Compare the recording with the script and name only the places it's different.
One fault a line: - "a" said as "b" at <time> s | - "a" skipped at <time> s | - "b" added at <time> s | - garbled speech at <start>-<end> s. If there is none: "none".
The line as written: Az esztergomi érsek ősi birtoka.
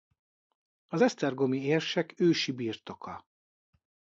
none